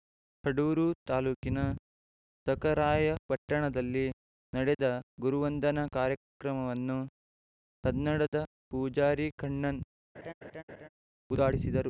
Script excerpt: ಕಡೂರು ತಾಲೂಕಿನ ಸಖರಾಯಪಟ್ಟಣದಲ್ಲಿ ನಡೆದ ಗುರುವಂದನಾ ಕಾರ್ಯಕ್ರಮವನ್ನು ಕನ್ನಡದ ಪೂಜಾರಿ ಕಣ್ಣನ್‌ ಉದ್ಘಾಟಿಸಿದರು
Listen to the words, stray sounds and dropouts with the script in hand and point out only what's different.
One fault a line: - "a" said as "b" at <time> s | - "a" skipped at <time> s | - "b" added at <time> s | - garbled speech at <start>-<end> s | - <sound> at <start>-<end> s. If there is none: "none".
- laugh at 10.1-10.9 s